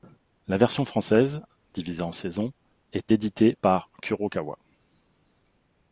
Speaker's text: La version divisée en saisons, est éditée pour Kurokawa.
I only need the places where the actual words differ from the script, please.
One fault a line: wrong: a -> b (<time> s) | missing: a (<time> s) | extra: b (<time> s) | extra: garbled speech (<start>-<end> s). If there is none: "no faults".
extra: française (0.8 s)
wrong: pour -> par (3.6 s)